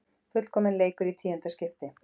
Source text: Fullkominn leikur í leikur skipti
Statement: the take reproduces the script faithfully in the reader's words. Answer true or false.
false